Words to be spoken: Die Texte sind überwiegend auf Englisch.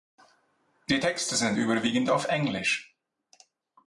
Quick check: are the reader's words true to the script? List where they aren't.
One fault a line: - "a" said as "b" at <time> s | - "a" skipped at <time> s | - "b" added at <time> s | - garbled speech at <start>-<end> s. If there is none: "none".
none